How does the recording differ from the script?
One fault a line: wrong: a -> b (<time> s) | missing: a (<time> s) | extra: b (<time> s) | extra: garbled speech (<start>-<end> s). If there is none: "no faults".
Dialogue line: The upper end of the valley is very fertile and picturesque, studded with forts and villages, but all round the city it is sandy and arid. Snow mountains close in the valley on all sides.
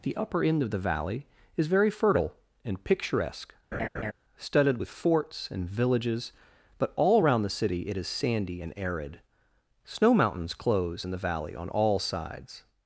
wrong: round -> around (7.2 s)